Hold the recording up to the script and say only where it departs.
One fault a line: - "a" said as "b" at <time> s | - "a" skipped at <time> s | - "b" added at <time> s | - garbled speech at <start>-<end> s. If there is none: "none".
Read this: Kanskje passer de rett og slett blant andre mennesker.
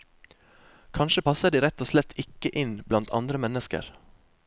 - "ikke inn" added at 2.2 s